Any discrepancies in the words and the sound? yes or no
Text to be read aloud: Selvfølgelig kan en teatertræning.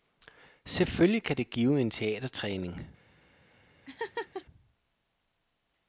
yes